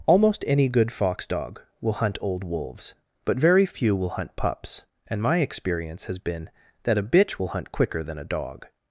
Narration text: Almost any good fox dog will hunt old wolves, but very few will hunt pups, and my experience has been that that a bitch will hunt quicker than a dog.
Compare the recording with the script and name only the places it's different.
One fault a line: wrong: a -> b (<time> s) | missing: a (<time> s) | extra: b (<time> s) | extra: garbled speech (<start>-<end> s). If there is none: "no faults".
missing: that (7.0 s)